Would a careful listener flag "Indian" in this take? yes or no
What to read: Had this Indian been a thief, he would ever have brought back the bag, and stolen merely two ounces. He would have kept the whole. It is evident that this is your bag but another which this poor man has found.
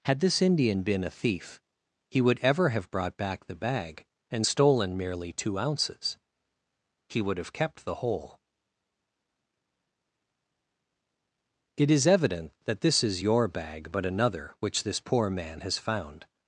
no